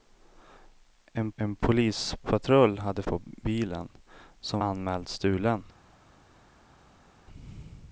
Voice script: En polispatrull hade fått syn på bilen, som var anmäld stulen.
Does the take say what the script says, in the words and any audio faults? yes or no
no